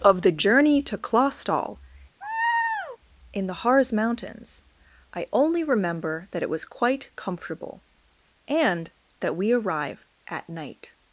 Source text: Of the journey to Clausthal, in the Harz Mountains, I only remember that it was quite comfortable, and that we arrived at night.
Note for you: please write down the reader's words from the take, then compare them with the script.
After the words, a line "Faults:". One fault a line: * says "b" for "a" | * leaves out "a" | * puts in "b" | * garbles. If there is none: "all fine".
Of the journey to Clausthal, in the Harz Mountains, I only remember that it was quite comfortable, and that we arrive at night.
Faults:
* says "arrive" for "arrived"